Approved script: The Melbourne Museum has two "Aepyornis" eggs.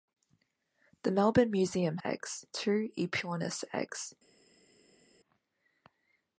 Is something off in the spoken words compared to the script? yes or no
yes